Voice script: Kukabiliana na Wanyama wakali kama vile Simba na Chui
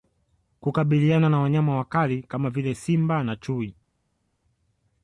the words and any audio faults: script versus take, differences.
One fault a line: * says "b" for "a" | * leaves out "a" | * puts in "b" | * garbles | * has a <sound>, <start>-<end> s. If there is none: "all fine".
all fine